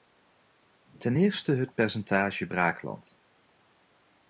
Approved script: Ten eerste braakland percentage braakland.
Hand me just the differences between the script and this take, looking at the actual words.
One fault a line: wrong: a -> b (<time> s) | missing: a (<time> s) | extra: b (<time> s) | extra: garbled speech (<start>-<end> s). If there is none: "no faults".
wrong: braakland -> het (1.5 s)